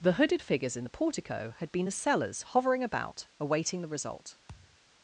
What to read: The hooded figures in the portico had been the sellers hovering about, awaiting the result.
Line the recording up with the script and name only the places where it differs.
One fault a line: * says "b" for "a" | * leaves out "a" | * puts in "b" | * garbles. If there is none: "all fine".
all fine